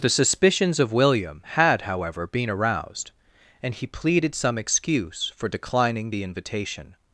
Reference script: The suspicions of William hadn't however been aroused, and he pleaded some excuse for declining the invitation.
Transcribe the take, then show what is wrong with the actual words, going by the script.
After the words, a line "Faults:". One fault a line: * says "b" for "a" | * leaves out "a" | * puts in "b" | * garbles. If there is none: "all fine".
The suspicions of William had however been aroused, and he pleaded some excuse for declining the invitation.
Faults:
* says "had" for "hadn't"